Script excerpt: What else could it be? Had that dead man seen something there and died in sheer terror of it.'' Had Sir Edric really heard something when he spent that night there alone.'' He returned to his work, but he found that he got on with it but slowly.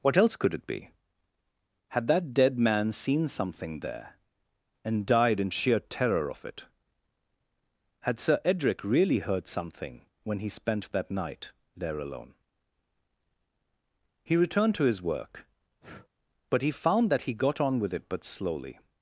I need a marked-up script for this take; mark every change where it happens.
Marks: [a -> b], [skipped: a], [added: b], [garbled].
What else could it be? Had that dead man seen something there and died in sheer terror of it.'' Had Sir Edric really heard something when he spent that night there alone.'' He returned to his work, but he found that he got on with it but slowly.